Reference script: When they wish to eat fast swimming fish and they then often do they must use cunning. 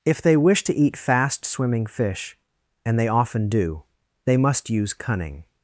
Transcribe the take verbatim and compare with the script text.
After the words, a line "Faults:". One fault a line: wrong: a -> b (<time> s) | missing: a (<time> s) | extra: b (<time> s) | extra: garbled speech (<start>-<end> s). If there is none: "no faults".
If they wish to eat fast swimming fish and they often do they must use cunning.
Faults:
wrong: When -> If (0.0 s)
missing: then (3.1 s)